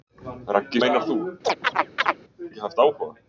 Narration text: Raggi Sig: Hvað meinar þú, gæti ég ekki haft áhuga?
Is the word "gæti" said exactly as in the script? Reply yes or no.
no